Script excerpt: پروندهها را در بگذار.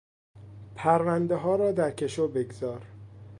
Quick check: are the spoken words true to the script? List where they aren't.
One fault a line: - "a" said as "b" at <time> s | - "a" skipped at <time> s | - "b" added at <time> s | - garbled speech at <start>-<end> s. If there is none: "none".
- "کشو" added at 1.9 s